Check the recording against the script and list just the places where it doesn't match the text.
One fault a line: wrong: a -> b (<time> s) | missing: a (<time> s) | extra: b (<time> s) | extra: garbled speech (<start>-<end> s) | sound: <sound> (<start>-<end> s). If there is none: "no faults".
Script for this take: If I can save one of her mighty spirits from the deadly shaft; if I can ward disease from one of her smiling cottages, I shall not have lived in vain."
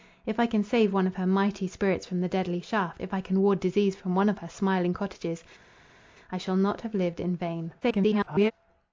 extra: garbled speech (7.8-8.5 s)